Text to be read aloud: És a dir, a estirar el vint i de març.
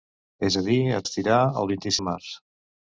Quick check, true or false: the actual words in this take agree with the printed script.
true